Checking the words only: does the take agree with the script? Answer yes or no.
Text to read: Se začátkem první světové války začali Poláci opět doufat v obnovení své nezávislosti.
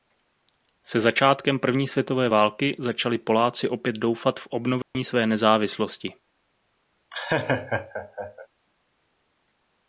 yes